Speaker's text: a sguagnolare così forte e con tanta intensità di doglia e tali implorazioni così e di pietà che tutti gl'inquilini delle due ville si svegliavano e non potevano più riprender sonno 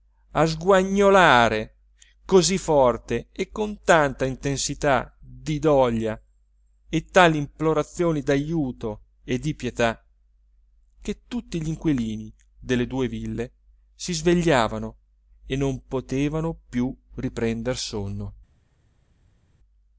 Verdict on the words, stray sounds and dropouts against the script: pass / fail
fail